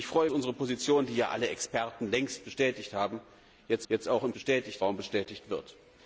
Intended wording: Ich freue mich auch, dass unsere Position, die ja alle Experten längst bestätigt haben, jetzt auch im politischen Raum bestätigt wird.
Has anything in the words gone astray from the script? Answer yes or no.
yes